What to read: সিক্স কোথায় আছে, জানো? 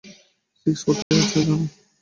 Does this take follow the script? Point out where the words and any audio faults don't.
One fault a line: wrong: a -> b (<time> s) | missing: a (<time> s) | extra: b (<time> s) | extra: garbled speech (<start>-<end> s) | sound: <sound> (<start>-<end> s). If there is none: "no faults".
sound: dropout (1.0-1.1 s)